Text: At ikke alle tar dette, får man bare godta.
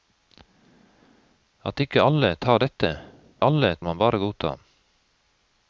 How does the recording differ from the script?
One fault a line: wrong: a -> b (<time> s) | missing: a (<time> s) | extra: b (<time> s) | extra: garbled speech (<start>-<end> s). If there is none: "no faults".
wrong: får -> alle (3.4 s)